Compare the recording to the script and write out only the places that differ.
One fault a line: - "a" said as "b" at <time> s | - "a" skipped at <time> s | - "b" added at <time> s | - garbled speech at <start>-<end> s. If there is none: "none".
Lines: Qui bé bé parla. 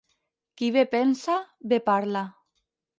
- "pensa" added at 0.9 s